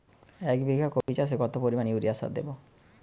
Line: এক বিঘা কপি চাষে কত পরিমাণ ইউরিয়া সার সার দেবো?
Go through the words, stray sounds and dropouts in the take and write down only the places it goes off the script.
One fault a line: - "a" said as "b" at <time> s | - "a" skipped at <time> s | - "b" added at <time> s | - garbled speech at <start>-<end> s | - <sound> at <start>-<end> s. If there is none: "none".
- dropout at 1.0-1.1 s
- "সার" skipped at 2.3 s